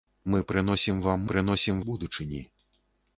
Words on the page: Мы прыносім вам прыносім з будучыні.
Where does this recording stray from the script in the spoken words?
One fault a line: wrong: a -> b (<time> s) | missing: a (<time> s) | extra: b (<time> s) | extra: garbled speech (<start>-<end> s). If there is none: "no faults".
no faults